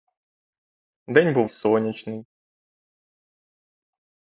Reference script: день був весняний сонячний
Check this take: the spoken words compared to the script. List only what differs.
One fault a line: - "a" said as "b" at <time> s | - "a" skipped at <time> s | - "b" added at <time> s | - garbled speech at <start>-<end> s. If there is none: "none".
- "весняний" skipped at 1.5 s